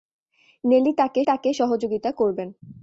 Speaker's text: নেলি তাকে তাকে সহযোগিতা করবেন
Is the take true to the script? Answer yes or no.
yes